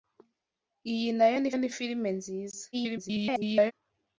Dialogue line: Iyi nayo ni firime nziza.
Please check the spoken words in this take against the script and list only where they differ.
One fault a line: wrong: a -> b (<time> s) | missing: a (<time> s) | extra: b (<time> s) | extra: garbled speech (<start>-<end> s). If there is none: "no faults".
extra: ni (1.6 s)
extra: garbled speech (2.7-3.7 s)